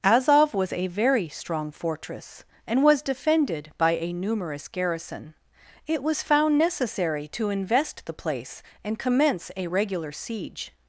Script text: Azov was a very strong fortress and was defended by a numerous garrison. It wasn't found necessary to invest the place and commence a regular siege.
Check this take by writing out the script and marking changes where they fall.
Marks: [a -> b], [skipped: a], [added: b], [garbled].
Azov was a very strong fortress and was defended by a numerous garrison. It [wasn't -> was] found necessary to invest the place and commence a regular siege.